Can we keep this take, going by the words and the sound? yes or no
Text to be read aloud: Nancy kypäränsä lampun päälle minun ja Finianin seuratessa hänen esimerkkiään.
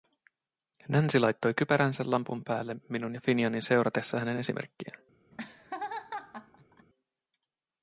no